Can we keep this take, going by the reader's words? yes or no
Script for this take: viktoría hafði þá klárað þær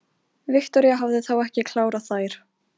no